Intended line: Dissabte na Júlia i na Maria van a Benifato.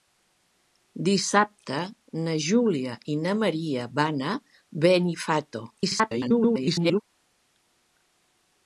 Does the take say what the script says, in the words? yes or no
no